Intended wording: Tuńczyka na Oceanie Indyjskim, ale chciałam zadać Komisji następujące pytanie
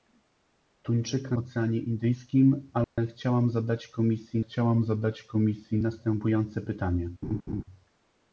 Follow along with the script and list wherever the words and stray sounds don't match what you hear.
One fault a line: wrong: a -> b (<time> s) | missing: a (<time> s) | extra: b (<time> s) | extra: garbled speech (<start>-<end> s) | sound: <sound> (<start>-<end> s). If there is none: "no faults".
missing: na (1.4 s)
sound: dropout (2.8-3.0 s)
extra: chciałam zadać Komisji (4.4 s)
sound: laugh (7.2-7.6 s)